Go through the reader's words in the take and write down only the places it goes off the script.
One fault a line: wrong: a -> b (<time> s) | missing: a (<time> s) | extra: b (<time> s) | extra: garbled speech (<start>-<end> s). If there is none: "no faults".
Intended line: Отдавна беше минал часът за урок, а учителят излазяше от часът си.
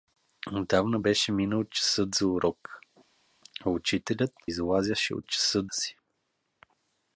no faults